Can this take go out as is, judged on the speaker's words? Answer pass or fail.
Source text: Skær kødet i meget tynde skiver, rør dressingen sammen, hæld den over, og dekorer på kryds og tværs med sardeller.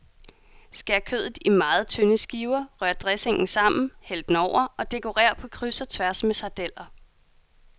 pass